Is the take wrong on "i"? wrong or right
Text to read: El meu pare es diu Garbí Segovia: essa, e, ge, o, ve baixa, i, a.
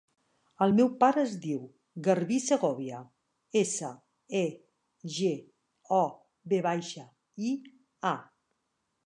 right